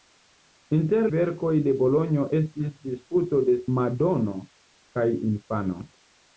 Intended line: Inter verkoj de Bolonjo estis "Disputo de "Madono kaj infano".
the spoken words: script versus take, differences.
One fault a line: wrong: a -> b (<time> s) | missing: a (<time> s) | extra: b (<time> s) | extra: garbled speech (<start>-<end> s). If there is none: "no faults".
no faults